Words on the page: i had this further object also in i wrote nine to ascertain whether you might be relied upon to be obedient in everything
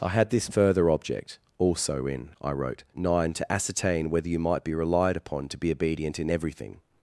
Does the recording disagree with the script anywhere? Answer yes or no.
no